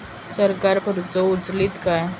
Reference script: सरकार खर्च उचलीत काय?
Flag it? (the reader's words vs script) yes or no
no